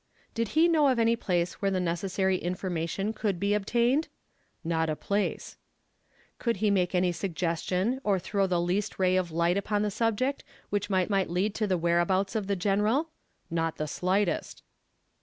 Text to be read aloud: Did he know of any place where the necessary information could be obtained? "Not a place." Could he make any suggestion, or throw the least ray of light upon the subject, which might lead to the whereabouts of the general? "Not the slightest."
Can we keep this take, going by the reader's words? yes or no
no